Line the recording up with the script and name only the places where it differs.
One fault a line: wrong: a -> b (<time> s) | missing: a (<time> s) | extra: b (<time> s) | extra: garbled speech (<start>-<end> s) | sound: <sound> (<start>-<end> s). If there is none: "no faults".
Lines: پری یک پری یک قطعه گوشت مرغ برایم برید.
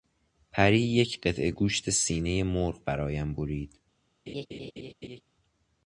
missing: پری یک (1.2 s)
extra: سینهی (1.9 s)
sound: laugh (4.3-5.2 s)